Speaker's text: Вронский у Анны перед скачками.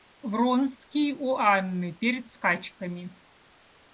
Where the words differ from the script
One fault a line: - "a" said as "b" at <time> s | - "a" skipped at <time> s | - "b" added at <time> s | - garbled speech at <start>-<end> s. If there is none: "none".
none